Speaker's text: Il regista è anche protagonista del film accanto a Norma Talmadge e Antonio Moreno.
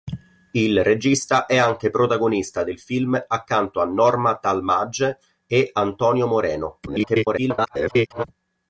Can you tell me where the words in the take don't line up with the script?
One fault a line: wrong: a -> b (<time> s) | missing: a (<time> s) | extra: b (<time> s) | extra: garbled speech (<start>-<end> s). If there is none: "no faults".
extra: garbled speech (6.9-8.2 s)